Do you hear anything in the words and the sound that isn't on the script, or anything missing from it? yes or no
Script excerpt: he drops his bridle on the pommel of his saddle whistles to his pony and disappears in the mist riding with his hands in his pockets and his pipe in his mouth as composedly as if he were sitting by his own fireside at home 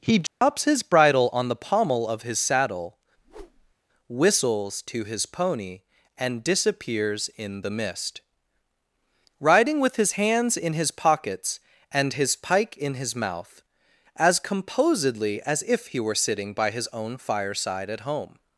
yes